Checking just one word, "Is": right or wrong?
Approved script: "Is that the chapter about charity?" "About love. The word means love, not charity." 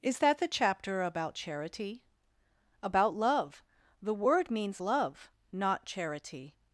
right